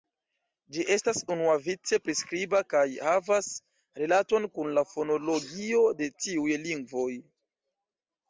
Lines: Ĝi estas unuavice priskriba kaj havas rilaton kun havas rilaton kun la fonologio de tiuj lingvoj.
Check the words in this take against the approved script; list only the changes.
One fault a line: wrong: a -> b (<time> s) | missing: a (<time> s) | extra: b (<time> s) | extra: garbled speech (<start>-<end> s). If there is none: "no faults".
missing: havas rilaton kun (4.7 s)